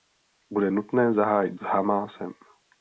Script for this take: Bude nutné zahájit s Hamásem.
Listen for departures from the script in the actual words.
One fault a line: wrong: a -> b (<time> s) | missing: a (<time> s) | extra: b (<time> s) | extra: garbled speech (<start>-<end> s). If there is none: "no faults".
no faults